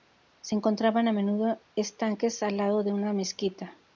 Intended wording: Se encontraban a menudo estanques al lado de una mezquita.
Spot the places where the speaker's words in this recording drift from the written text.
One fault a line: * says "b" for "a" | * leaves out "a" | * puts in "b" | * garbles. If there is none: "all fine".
all fine